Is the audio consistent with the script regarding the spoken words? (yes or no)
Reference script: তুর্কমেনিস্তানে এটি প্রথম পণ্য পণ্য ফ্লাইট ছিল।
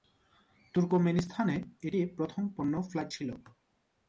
no